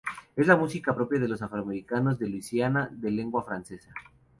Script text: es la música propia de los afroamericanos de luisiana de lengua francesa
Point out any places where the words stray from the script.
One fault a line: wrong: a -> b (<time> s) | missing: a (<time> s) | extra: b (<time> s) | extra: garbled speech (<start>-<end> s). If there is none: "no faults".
no faults